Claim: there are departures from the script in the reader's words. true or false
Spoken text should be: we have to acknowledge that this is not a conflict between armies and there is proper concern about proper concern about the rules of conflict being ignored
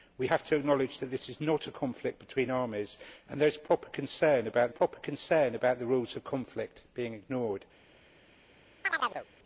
false